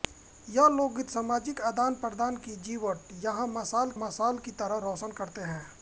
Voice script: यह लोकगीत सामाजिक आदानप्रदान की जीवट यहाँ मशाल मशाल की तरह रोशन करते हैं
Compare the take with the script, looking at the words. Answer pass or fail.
pass